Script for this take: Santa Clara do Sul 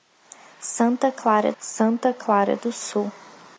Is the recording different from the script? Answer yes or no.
yes